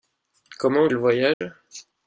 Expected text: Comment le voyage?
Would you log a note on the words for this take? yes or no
no